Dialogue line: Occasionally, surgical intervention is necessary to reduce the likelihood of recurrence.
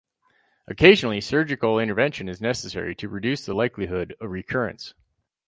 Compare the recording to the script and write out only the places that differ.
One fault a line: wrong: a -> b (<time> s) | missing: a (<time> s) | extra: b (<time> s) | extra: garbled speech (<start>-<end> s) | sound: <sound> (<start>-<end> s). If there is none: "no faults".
no faults